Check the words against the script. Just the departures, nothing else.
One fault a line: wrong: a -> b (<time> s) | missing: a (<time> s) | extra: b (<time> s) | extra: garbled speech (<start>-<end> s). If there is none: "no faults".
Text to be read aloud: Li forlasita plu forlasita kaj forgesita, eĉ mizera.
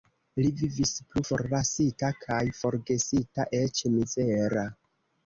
wrong: forlasita -> vivis (0.6 s)